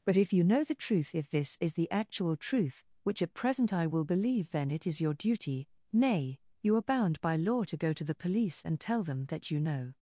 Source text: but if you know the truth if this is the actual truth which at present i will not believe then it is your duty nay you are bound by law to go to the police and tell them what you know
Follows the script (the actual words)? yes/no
no